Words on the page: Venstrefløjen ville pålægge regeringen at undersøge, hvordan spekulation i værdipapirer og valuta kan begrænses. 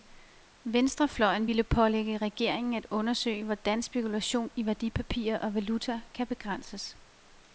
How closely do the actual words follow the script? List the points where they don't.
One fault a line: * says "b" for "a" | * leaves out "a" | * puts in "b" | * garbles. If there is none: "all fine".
all fine